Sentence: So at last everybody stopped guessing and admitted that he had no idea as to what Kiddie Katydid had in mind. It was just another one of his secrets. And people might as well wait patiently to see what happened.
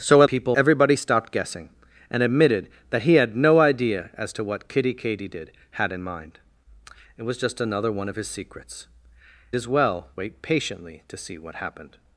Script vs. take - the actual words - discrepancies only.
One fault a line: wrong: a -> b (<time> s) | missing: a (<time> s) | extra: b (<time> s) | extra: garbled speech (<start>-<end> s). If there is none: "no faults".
wrong: last -> people (0.2 s)
missing: And people might (8.9 s)